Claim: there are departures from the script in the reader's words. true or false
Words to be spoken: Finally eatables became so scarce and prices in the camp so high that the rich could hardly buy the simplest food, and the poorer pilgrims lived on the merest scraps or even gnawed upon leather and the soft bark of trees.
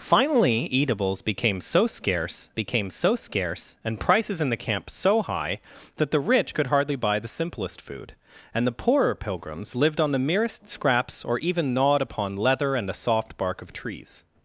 true